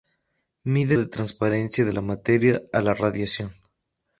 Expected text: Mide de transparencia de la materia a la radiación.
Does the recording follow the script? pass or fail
pass